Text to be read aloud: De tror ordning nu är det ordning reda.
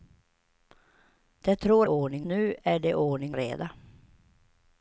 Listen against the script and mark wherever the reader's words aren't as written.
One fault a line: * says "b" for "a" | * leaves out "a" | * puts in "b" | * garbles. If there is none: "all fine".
all fine